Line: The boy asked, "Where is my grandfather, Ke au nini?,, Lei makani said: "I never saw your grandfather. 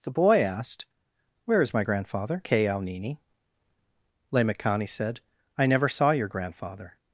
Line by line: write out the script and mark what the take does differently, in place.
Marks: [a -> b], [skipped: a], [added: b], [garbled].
The boy asked, "Where is my grandfather, Ke au nini?,, Lei makani said: "I never saw your grandfather.